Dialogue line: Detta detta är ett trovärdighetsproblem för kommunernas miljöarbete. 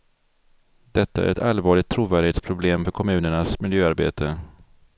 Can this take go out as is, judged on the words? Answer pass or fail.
fail